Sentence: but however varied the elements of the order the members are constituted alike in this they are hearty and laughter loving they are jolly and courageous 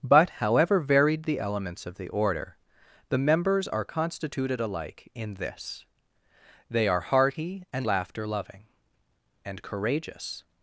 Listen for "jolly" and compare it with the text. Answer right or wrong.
wrong